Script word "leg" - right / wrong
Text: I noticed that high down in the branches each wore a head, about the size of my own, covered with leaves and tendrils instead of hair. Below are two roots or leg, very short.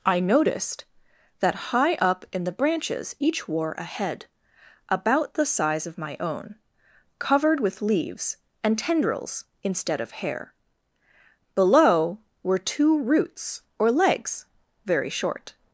wrong